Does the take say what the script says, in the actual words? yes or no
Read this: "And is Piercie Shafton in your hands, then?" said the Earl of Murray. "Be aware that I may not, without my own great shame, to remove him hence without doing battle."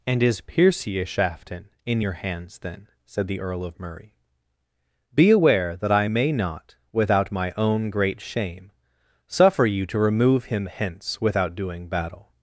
no